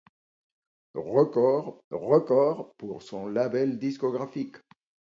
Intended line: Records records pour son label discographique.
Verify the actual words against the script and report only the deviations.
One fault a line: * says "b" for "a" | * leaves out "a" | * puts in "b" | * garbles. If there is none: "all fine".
all fine